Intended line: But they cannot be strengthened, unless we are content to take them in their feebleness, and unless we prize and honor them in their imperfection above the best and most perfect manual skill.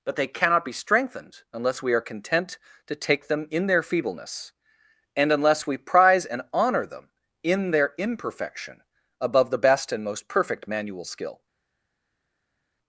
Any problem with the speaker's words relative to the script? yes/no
no